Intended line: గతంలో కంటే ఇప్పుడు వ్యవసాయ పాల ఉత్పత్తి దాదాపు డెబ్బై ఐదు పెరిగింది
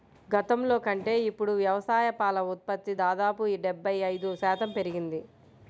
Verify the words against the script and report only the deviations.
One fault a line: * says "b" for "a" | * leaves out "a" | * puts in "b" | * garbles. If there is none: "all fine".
* puts in "శాతం"